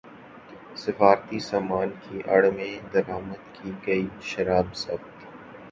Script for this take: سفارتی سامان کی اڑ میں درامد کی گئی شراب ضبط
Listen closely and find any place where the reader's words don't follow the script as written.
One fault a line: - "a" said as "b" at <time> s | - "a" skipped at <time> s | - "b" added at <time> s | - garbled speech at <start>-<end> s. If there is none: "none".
none